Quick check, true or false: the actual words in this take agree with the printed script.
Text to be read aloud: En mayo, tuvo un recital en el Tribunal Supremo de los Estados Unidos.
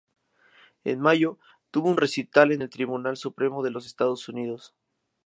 true